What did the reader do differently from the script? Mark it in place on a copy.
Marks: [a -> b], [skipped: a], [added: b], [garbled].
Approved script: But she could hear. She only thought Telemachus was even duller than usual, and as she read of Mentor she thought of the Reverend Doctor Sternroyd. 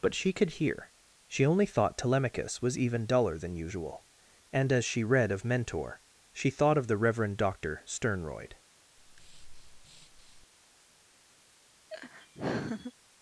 But she could hear. She only thought Telemachus was even duller than usual, and as she read of Mentor she thought of the Reverend Doctor Sternroyd.